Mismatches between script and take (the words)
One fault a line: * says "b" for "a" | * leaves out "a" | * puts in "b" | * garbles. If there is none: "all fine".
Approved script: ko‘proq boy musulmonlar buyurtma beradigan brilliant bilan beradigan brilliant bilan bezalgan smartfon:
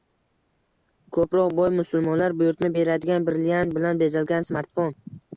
* leaves out "beradigan brilliant bilan"